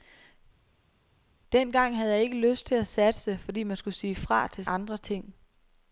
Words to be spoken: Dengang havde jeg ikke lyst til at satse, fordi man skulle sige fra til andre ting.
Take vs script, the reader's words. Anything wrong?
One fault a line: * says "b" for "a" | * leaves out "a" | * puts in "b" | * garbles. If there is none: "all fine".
all fine